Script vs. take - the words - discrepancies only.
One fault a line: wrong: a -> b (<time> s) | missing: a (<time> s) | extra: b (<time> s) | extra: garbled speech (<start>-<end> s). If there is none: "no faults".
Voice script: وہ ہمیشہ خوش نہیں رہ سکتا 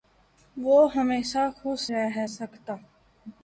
missing: نہیں (1.9 s)